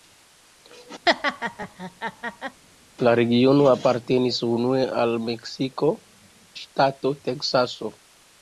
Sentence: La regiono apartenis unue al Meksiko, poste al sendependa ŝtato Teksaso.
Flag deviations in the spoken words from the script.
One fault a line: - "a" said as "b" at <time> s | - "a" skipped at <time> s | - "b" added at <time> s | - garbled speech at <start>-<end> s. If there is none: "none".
- "poste al sendependa" skipped at 5.9 s